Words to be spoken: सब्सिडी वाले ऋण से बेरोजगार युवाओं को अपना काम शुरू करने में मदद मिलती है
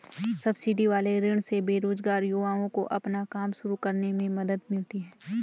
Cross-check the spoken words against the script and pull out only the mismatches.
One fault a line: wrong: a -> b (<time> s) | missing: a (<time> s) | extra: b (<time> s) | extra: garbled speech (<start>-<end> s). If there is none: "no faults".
no faults